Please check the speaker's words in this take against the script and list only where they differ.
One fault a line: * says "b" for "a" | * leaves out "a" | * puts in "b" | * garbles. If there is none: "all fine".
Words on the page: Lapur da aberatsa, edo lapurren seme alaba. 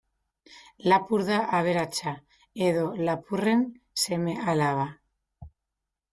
all fine